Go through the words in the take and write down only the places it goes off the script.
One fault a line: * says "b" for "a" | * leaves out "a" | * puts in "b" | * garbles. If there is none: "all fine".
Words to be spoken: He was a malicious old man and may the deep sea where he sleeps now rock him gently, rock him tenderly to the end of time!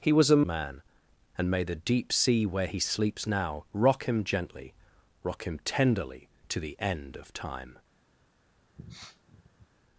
* leaves out "malicious old"